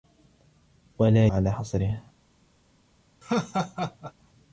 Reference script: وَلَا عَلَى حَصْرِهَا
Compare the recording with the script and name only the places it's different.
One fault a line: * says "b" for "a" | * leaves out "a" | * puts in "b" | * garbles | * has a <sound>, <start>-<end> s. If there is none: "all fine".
* has a laugh, 3.2-4.1 s